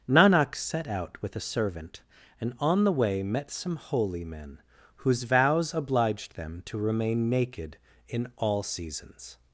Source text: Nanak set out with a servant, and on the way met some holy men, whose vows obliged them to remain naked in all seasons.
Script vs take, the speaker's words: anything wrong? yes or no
no